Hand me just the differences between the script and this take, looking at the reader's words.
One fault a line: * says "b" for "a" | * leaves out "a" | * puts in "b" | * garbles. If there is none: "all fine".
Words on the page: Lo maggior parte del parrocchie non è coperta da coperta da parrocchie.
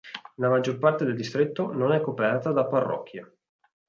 * says "La" for "Lo"
* says "distretto" for "parrocchie"
* leaves out "coperta da"